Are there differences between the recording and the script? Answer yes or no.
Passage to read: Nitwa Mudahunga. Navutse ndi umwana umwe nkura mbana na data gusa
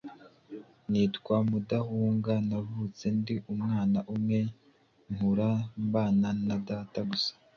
no